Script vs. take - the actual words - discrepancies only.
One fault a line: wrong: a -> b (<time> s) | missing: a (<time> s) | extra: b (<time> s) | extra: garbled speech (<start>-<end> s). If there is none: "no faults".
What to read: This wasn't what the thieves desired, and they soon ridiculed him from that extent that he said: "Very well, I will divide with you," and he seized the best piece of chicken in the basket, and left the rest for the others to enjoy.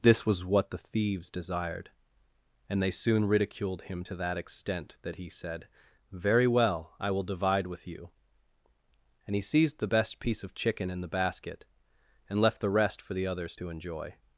wrong: wasn't -> was (0.2 s)
wrong: from -> to (4.0 s)